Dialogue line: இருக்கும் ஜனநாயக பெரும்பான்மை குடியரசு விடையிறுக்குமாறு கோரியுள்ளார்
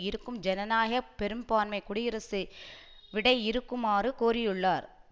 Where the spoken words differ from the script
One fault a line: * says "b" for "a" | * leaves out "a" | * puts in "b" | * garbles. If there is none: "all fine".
all fine